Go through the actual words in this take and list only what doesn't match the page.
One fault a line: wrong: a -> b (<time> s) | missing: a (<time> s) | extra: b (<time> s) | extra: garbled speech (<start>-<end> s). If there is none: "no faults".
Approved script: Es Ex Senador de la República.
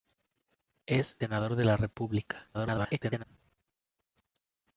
missing: Ex (1.2 s)
extra: garbled speech (2.5-3.2 s)